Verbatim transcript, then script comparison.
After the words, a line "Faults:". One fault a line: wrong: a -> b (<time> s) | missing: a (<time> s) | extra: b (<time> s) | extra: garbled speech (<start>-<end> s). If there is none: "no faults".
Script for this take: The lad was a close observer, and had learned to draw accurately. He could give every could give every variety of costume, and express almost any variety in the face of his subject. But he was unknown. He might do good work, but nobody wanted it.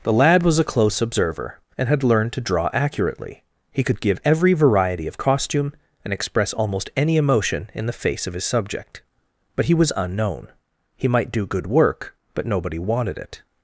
The lad was a close observer, and had learned to draw accurately. He could give every variety of costume, and express almost any emotion in the face of his subject. But he was unknown. He might do good work, but nobody wanted it.
Faults:
missing: could give every (4.5 s)
wrong: variety -> emotion (7.2 s)